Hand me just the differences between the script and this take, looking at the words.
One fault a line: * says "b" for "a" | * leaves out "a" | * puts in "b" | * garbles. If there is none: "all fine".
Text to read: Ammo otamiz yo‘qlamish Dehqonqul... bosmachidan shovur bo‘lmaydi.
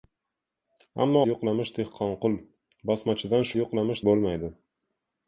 * leaves out "otamiz"
* says "yo‘qlamish" for "shovur"